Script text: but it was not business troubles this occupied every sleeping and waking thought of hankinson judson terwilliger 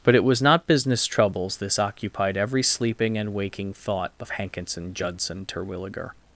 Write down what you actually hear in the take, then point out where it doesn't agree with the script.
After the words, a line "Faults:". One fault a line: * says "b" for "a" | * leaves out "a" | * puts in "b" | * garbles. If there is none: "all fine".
but it was not business troubles this occupied every sleeping and waking thought of hankinson judson terwilliger
Faults:
all fine